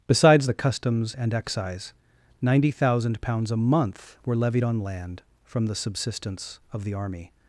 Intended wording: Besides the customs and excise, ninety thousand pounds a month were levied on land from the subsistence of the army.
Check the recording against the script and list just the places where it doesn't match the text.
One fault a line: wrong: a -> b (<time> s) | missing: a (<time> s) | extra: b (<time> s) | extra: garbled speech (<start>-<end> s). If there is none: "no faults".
no faults